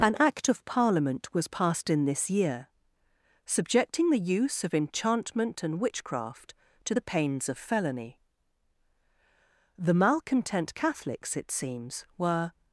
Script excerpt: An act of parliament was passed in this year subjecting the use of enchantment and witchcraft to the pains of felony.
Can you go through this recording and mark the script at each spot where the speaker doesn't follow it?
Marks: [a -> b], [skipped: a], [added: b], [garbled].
An act of parliament was passed in this year subjecting the use of enchantment and witchcraft to the pains of felony. [added: The malcontent catholics it seems were]